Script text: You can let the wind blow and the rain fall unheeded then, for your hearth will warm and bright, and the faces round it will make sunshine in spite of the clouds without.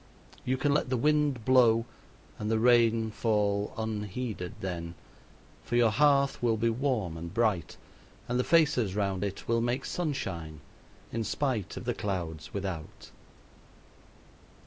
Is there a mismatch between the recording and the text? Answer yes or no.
yes